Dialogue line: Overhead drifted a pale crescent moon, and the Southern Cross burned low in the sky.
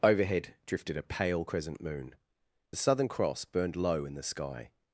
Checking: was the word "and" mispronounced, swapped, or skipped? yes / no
yes